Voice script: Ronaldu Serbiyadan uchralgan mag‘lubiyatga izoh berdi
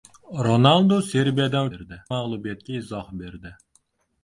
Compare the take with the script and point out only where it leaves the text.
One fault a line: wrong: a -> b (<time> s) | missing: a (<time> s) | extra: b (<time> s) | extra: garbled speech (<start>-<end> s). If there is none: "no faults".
wrong: uchralgan -> berdi (1.7 s)